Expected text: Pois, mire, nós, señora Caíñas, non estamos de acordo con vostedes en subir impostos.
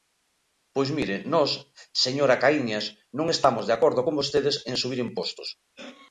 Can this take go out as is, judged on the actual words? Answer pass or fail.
pass